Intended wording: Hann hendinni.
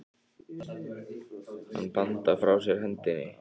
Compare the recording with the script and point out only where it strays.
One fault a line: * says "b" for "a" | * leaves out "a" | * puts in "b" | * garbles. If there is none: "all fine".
* puts in "bandar frá sér"